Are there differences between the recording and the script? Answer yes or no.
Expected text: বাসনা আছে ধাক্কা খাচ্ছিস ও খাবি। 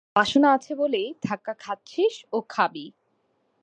yes